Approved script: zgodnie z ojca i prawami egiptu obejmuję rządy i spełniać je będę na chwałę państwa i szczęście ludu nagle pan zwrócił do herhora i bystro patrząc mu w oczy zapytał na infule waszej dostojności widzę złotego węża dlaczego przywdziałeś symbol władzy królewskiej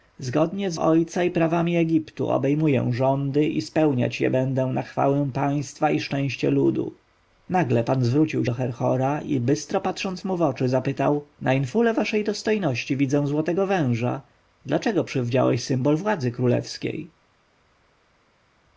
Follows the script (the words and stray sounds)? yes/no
yes